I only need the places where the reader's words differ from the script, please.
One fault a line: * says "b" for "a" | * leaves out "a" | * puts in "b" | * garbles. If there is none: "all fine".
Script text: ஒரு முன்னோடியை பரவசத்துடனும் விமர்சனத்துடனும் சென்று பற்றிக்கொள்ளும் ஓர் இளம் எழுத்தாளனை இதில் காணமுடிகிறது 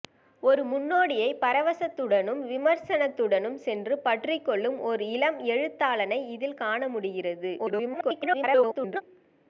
* garbles